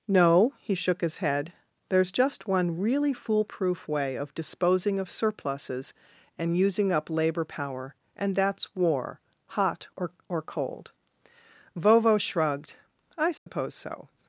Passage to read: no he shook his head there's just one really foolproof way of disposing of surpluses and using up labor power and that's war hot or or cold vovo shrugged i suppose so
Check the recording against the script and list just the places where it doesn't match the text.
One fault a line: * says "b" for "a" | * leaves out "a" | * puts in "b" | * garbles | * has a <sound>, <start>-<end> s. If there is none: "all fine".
* has a dropout, 13.4-13.5 s